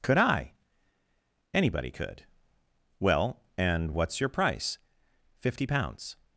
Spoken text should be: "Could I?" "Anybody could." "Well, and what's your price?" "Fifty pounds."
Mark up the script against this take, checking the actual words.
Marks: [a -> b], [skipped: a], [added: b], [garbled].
"Could I?" "Anybody could." "Well, and what's your price?" "Fifty pounds."